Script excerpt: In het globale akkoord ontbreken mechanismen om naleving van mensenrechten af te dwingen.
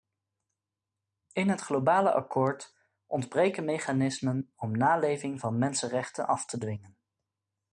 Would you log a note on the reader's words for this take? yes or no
no